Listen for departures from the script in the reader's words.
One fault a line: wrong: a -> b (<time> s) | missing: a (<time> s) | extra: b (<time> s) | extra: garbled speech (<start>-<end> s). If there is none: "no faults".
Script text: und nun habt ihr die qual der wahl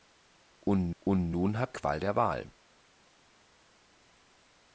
extra: und (1.0 s)
missing: ihr die (1.8 s)